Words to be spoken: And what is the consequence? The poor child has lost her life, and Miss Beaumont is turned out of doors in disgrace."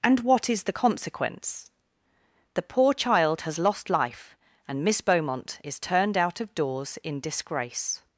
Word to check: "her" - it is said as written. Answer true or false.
false